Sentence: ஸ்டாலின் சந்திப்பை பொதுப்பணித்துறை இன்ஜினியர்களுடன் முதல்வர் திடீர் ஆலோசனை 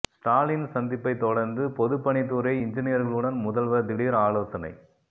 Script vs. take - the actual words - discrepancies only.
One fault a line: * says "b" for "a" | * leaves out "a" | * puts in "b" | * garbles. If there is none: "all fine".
* puts in "தொடர்ந்து"